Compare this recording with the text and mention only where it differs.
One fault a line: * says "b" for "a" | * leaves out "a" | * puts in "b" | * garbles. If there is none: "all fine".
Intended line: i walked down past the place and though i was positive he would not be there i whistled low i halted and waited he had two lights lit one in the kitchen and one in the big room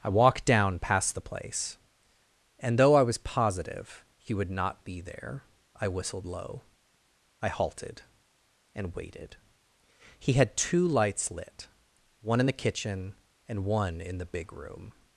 all fine